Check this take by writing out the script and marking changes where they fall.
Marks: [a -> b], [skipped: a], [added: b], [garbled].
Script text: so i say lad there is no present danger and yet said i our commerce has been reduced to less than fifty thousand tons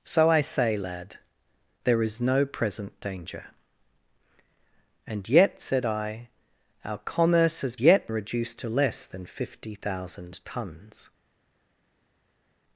so i say lad there is no present danger and yet said i our commerce has [been -> yet] reduced to less than fifty thousand tons